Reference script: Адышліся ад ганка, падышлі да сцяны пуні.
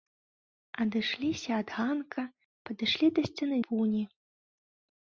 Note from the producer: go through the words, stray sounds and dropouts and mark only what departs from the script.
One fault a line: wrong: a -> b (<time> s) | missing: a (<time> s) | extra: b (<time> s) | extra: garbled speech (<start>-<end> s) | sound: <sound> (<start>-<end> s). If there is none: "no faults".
no faults